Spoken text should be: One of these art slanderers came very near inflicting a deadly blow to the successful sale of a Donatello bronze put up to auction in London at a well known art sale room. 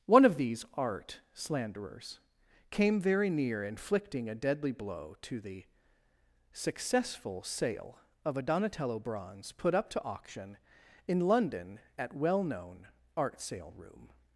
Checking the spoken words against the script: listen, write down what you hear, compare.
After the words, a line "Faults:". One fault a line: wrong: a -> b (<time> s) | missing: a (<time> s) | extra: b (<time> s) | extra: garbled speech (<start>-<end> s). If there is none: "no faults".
One of these art slanderers came very near inflicting a deadly blow to the successful sale of a Donatello bronze put up to auction in London at well known art sale room.
Faults:
missing: a (12.1 s)